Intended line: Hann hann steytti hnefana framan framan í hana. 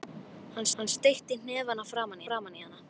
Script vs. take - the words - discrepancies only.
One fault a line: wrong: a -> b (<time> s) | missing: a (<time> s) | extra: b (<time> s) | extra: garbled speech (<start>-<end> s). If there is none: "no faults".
no faults